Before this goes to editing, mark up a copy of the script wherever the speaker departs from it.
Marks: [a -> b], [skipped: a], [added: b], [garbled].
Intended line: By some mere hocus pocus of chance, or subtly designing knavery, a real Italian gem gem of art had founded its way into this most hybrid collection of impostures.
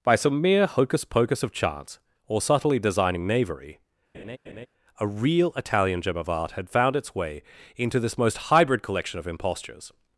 By some mere hocus pocus of chance, or subtly designing knavery, a real Italian gem [skipped: gem] of art had [founded -> found] its way into this most hybrid collection of impostures.